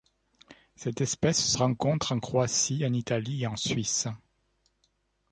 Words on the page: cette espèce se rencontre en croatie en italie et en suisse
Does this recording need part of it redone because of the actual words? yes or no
no